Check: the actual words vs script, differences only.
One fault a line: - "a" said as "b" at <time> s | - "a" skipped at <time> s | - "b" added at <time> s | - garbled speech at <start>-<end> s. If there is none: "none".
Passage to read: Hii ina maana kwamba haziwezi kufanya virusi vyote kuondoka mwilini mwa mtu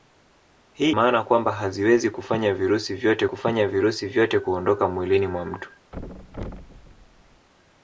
- "ina" skipped at 0.9 s
- "kufanya virusi vyote" added at 3.2 s